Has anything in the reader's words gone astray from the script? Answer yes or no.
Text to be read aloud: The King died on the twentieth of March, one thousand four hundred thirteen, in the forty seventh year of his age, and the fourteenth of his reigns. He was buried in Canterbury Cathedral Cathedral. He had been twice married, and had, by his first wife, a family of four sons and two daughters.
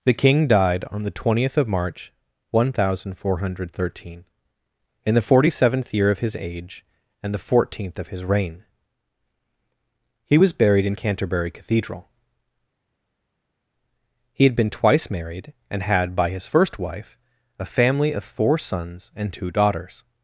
yes